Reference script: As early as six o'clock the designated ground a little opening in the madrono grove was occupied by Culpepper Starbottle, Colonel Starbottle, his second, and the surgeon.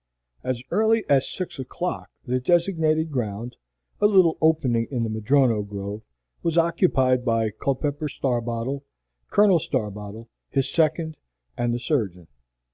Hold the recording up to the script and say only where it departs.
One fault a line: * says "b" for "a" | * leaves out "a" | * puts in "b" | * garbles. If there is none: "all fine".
all fine